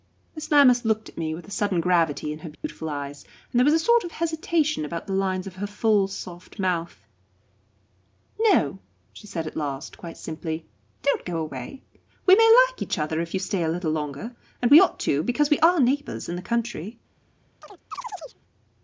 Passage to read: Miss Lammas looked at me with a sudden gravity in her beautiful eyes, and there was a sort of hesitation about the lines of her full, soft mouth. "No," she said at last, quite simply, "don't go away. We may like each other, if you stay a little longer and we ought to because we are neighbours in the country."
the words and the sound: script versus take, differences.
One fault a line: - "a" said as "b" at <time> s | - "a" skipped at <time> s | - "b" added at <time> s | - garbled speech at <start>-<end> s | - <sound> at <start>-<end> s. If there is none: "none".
- dropout at 2.5-2.6 s
- chirp at 17.6-18.4 s